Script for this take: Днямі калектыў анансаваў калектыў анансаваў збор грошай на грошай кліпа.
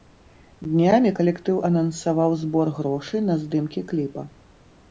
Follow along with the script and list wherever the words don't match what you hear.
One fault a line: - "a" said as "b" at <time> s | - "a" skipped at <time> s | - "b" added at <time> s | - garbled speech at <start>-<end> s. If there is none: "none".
- "калектыў анансаваў" skipped at 2.4 s
- "грошай" said as "здымкі" at 3.5 s